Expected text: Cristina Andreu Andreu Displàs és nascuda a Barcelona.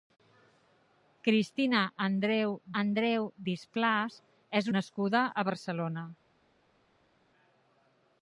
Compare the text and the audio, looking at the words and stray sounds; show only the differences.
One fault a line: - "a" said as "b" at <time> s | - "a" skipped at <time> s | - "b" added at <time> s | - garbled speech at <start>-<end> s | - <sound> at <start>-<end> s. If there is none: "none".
none